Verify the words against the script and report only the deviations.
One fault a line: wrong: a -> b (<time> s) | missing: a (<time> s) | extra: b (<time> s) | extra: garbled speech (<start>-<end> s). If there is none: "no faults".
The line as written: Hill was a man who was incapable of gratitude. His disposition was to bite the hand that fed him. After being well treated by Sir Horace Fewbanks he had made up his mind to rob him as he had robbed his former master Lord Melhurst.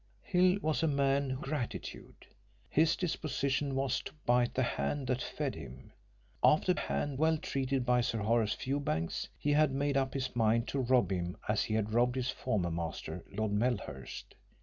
missing: was incapable of (1.4 s)
wrong: being -> hand (6.7 s)